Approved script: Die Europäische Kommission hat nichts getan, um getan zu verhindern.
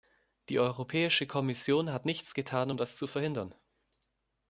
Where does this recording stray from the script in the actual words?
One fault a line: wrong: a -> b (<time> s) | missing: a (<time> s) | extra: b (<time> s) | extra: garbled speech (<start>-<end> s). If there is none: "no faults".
wrong: getan -> das (2.8 s)